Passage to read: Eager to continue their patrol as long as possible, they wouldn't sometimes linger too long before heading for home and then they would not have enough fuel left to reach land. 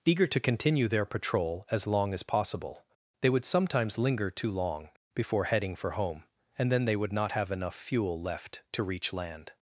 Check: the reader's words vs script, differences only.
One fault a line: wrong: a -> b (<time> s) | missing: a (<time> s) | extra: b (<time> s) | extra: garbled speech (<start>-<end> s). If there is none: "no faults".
wrong: wouldn't -> would (3.3 s)